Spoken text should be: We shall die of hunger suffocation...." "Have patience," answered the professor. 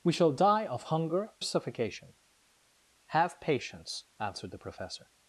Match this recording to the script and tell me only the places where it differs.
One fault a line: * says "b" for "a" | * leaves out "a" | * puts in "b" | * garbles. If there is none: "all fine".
all fine